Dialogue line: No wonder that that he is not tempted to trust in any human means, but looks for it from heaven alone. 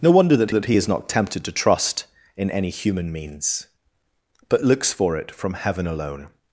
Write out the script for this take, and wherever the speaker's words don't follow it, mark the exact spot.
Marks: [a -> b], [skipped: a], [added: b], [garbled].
No wonder that that he is not tempted to trust in any human means, but looks for it from heaven alone.